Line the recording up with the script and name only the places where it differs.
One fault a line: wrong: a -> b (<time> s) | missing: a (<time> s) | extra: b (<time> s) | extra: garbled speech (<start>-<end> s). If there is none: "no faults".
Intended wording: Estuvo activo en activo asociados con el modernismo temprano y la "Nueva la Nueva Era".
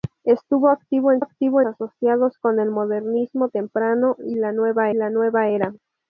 no faults